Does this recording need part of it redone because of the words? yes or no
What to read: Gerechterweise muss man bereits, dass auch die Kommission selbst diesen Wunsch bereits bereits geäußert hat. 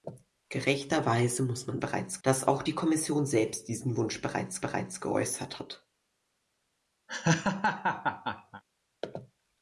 no